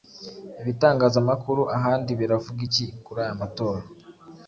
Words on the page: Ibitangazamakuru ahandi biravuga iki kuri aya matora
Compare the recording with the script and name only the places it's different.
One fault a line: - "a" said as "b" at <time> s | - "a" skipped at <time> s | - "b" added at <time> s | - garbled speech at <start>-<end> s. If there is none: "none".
none